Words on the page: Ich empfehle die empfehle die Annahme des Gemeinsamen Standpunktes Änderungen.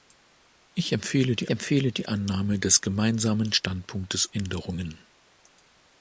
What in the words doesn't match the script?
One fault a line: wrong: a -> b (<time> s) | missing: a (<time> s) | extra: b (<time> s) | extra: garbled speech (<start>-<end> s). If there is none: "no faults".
no faults